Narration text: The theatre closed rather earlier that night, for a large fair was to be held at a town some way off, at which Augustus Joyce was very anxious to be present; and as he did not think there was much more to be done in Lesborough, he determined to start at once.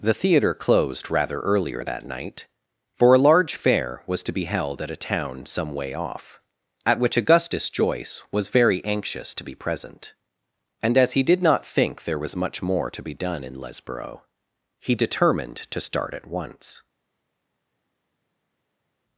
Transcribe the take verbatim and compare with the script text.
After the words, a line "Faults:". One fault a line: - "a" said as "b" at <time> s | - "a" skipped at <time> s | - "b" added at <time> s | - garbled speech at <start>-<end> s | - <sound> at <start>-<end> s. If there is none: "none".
The theatre closed rather earlier that night, for a large fair was to be held at a town some way off, at which Augustus Joyce was very anxious to be present; and as he did not think there was much more to be done in Lesborough, he determined to start at once.
Faults:
none